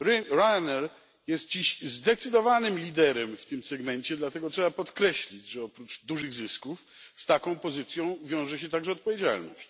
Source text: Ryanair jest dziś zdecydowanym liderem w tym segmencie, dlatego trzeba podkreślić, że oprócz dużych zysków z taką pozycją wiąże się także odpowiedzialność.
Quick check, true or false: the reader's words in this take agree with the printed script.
true